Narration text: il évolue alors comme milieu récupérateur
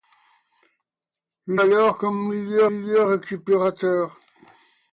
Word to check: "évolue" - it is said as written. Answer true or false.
false